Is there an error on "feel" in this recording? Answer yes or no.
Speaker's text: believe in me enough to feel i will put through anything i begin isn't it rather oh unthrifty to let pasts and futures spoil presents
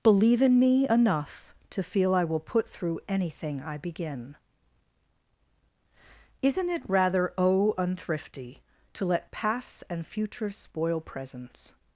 no